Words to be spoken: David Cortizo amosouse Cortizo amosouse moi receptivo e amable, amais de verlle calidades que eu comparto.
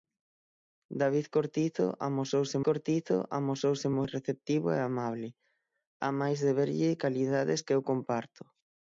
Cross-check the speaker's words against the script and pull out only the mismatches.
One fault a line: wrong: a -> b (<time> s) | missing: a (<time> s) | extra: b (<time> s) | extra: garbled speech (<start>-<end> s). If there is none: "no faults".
no faults